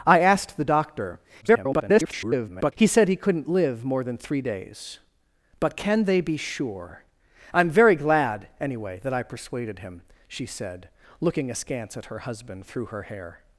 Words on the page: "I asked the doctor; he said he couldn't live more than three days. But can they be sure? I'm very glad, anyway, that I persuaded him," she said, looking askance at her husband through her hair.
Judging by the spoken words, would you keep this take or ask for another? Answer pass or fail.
fail